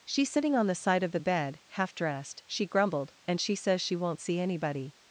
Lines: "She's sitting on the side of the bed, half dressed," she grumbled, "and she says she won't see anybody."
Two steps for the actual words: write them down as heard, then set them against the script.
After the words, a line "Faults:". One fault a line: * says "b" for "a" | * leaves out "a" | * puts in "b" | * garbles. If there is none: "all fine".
"She's sitting on the side of the bed, half dressed," she grumbled, "and she says she won't see anybody."
Faults:
all fine